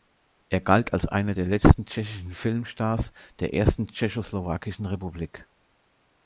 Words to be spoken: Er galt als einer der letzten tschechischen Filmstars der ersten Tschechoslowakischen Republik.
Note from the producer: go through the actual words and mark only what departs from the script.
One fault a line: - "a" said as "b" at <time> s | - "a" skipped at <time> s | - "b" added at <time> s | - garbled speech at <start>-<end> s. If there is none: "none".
none